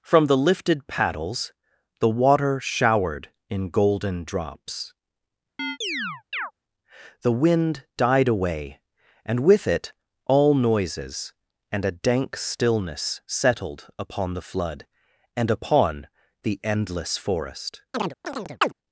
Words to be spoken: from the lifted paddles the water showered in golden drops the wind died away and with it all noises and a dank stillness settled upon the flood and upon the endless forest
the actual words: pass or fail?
pass